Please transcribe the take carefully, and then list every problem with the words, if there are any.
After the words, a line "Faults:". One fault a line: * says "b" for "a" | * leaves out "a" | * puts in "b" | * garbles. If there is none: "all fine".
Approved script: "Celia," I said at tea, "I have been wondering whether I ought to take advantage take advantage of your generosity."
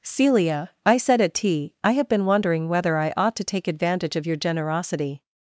"Celia," I said at tea, "I have been wondering whether I ought to take advantage of your generosity."
Faults:
* leaves out "take advantage"